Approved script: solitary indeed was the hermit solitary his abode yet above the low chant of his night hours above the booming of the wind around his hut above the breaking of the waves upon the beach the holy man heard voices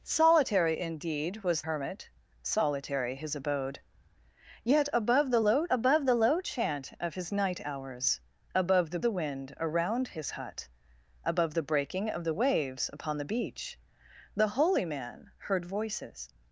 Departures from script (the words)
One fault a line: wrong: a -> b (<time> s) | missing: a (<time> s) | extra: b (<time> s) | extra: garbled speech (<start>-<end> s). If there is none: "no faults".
missing: the (1.6 s)
extra: above the low (5.7 s)
missing: booming of (9.0 s)